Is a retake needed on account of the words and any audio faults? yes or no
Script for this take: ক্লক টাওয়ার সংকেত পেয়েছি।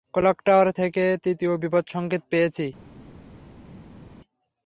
yes